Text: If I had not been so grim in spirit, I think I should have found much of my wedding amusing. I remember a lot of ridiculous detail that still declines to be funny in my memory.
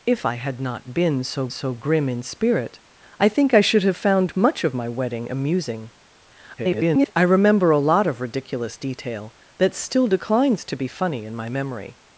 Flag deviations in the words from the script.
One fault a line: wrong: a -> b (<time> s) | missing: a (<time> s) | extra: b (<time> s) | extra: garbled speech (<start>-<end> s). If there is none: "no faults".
extra: so (1.5 s)
extra: garbled speech (6.6-7.1 s)